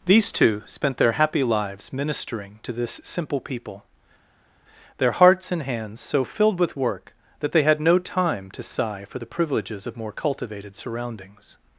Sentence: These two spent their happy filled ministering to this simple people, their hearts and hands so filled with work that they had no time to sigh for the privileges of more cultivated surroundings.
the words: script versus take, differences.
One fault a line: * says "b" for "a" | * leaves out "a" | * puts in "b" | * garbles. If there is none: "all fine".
* says "lives" for "filled"